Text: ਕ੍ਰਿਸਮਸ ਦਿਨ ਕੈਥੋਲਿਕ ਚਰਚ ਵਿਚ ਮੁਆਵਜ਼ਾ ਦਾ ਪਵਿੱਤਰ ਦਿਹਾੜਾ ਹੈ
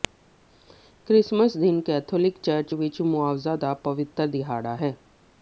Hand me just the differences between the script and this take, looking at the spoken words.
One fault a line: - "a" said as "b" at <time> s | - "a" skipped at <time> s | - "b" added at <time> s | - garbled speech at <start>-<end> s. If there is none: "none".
none